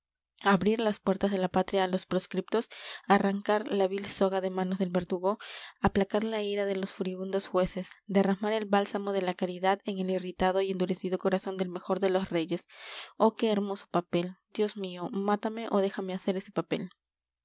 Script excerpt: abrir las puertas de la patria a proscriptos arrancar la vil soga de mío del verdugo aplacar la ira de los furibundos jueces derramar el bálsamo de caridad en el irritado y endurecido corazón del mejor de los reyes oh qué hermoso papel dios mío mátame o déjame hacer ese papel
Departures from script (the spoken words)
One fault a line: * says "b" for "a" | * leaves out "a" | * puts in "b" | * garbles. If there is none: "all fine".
* puts in "los"
* says "manos" for "mío"
* puts in "la"